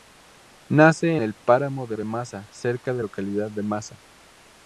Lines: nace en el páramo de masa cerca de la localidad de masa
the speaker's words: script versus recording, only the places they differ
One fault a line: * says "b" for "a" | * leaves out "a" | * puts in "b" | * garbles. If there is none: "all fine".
* leaves out "en"
* puts in "de"
* leaves out "la"